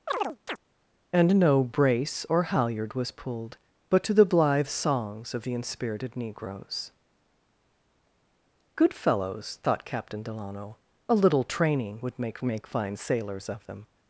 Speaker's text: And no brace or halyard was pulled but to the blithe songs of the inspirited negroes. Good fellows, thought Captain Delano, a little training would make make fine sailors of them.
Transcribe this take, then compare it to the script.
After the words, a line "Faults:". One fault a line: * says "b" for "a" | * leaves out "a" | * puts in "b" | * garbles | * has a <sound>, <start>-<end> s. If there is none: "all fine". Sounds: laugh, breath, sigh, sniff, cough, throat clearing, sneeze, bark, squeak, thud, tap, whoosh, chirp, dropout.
And no brace or halyard was pulled but to the blithe songs of the inspirited negroes. Good fellows, thought Captain Delano, a little training would make make fine sailors of them.
Faults:
* has a chirp, 0.1-0.6 s